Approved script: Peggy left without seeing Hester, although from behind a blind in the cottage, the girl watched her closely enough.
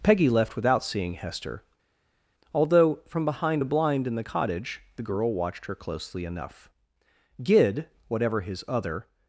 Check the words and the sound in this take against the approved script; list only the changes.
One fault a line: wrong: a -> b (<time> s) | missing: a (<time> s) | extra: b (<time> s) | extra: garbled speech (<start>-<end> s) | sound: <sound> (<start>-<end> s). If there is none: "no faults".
extra: Gid whatever his other (7.4 s)